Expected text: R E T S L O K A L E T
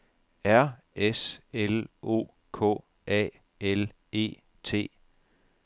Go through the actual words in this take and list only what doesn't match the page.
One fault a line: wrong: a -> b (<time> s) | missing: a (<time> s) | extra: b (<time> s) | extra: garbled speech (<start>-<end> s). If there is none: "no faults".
missing: E T (0.8 s)